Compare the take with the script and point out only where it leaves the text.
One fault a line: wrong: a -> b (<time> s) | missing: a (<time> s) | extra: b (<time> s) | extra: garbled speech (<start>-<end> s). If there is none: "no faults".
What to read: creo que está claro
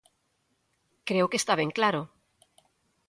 extra: ben (1.6 s)